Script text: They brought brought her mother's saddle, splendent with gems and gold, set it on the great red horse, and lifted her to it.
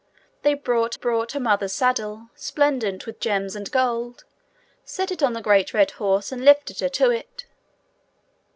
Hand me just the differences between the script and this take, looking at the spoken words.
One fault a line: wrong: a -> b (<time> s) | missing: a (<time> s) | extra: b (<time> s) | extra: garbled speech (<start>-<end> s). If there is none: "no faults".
no faults